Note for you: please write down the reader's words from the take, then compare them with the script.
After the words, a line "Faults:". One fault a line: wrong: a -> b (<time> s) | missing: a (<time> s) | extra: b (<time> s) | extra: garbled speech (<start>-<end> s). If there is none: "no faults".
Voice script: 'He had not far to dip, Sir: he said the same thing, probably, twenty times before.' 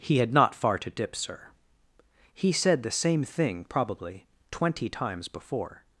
'He had not far to dip, Sir: he said the same thing, probably, twenty times before.'
Faults:
no faults